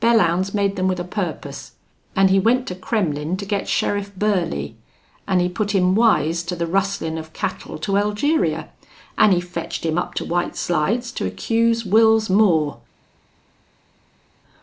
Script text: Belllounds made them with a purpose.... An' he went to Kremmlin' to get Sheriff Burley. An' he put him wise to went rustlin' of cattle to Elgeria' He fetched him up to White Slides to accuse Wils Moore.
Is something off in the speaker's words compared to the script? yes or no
yes